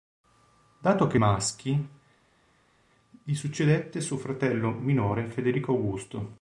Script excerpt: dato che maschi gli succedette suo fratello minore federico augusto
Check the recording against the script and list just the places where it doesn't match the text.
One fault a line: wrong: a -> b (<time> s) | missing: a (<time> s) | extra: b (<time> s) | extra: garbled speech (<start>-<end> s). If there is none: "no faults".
no faults